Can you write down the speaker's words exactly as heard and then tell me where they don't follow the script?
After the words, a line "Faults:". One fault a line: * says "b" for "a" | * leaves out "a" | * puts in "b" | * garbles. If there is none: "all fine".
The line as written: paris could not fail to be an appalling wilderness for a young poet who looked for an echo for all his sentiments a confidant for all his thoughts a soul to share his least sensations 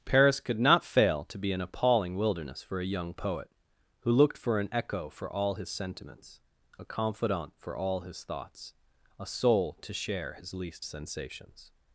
paris could not fail to be an appalling wilderness for a young poet who looked for an echo for all his sentiments a confidant for all his thoughts a soul to share his least sensations
Faults:
all fine